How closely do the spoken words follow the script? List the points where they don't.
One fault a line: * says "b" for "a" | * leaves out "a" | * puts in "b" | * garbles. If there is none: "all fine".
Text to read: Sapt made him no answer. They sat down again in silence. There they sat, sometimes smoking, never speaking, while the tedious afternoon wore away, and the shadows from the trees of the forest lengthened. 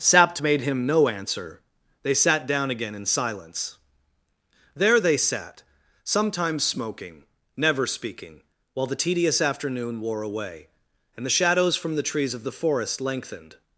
all fine